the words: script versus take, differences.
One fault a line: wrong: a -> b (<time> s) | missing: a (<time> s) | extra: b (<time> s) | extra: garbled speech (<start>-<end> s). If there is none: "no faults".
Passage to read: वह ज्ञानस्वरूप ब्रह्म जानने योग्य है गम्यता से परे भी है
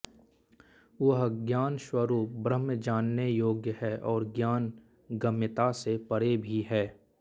extra: और ज्ञान (4.1 s)